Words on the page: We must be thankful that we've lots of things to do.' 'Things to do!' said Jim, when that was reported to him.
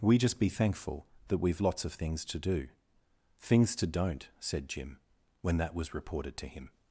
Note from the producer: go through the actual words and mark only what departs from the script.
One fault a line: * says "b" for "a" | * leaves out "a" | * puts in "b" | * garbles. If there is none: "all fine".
* says "just" for "must"
* says "don't" for "do"